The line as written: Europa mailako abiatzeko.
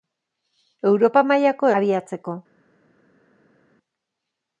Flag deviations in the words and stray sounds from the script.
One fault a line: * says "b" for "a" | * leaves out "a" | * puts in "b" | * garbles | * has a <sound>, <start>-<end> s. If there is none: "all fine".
all fine